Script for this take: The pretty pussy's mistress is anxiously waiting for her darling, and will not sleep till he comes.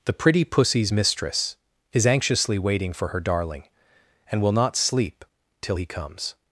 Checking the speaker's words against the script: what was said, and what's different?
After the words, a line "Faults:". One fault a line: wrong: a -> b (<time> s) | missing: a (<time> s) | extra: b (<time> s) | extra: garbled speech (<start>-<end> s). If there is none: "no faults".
The pretty pussy's mistress is anxiously waiting for her darling, and will not sleep till he comes.
Faults:
no faults